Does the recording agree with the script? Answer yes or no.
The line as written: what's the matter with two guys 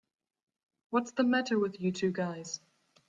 no